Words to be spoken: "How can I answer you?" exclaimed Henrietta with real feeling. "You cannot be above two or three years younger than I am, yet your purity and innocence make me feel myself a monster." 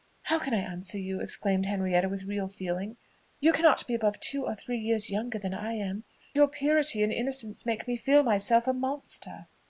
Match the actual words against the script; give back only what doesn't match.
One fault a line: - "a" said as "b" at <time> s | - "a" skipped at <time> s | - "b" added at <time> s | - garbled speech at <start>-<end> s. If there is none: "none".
- "yet" skipped at 6.0 s